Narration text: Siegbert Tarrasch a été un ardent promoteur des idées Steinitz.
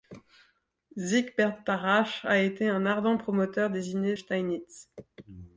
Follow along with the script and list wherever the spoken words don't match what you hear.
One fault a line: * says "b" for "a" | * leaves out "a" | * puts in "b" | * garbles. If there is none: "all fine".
all fine